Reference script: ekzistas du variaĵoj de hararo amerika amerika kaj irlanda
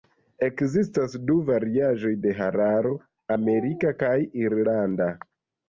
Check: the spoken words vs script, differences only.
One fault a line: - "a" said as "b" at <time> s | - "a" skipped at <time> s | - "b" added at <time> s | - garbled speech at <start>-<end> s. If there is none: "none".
- "amerika" skipped at 4.0 s